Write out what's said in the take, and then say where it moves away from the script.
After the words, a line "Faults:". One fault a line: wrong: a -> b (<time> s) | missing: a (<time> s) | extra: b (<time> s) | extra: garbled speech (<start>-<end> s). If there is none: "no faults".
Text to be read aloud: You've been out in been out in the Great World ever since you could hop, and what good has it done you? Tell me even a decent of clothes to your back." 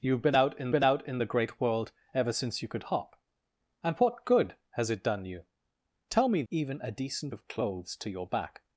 You've been out in been out in the Great World ever since you could hop, and what good has it done you? Tell me even a decent of clothes to your back."
Faults:
no faults